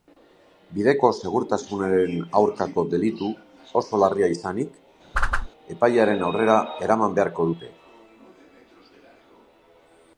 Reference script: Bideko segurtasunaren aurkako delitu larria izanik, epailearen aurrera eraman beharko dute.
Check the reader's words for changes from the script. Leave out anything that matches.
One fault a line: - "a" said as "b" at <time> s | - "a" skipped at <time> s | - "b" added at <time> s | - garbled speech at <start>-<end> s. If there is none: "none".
- "oso" added at 3.8 s